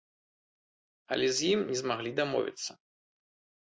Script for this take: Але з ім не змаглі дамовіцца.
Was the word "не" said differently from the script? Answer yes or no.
no